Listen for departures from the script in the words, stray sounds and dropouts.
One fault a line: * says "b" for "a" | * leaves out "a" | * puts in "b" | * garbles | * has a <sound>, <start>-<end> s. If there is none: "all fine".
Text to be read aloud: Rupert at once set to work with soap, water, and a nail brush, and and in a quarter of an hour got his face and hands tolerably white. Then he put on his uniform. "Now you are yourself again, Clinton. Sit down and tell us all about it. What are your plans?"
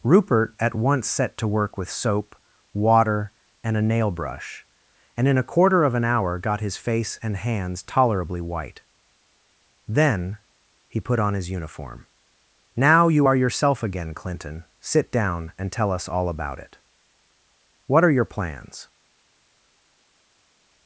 * leaves out "and"